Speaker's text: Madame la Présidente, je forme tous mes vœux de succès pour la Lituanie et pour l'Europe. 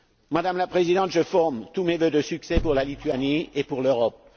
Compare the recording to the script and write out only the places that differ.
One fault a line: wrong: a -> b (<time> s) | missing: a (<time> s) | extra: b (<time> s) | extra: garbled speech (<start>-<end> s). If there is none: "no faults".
no faults